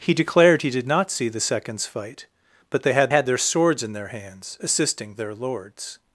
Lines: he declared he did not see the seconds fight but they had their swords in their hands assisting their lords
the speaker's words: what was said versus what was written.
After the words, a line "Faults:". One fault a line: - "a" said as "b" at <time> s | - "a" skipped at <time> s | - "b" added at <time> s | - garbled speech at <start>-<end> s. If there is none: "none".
he declared he did not see the seconds fight but they had had their swords in their hands assisting their lords
Faults:
- "had" added at 3.1 s